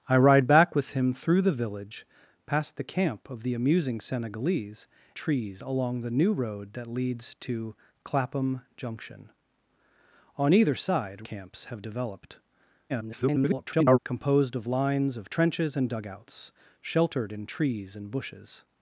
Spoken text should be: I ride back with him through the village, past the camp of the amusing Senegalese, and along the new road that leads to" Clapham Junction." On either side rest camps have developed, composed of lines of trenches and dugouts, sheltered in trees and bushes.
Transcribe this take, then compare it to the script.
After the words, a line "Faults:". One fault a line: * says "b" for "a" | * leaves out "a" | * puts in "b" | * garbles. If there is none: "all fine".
I ride back with him through the village, past the camp of the amusing Senegalese, trees along the new road that leads to" Clapham Junction." On either side camps have developed, [garbled] composed of lines of trenches and dugouts, sheltered in trees and bushes.
Faults:
* says "trees" for "and"
* leaves out "rest"
* garbles